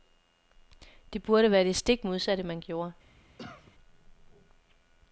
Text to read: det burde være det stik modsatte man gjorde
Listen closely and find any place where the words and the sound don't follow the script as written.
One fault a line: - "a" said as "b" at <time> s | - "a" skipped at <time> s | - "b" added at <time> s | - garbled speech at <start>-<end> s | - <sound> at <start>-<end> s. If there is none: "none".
- cough at 3.4-3.7 s